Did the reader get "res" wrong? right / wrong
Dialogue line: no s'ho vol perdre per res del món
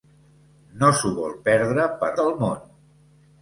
wrong